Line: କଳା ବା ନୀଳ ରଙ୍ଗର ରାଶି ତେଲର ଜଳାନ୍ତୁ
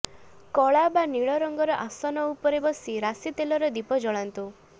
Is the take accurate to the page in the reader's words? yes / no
no